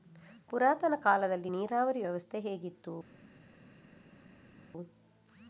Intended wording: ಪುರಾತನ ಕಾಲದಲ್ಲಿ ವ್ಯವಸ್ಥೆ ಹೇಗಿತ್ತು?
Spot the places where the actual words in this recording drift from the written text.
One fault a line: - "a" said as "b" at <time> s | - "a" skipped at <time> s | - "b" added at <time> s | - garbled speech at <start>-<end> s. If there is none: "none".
- "ನೀರಾವರಿ" added at 1.5 s